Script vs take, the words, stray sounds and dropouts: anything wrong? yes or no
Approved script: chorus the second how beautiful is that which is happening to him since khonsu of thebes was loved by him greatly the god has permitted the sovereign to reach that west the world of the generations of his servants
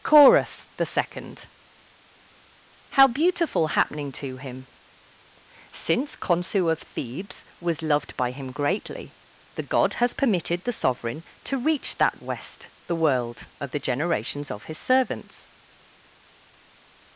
yes